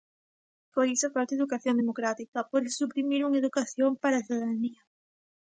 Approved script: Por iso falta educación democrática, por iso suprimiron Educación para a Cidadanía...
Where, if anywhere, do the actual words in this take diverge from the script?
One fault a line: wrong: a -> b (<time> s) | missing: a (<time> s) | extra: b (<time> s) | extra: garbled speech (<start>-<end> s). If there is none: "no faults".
no faults